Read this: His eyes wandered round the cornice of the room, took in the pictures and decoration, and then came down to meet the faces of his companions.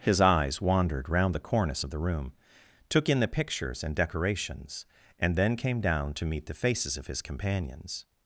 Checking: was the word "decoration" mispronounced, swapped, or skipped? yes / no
yes